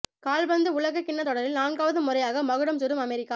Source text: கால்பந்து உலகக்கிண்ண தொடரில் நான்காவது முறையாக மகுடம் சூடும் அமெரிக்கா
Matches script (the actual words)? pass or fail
pass